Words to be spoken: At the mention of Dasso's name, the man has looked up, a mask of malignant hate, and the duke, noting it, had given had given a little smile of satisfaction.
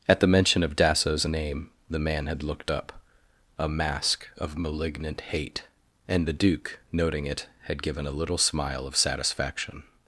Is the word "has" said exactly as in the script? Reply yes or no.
no